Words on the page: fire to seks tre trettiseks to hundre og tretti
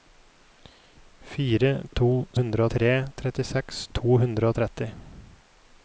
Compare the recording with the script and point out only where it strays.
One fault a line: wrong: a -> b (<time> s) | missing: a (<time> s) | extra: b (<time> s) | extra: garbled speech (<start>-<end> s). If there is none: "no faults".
wrong: seks -> hundre (2.4 s)